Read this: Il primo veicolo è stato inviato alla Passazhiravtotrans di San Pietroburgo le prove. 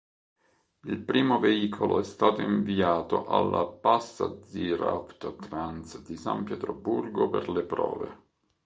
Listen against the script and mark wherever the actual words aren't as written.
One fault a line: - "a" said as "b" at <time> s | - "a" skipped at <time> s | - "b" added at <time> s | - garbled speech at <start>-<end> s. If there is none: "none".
- "per" added at 7.3 s